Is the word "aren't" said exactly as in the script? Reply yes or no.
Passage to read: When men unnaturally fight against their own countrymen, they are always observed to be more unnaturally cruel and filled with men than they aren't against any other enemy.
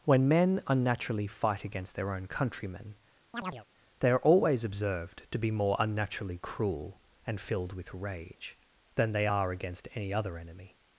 no